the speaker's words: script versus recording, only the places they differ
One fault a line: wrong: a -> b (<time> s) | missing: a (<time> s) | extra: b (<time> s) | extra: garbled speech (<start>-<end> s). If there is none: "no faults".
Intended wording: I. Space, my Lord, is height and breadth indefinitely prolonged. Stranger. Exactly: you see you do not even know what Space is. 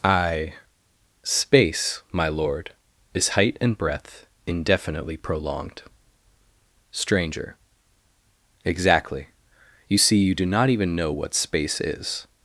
no faults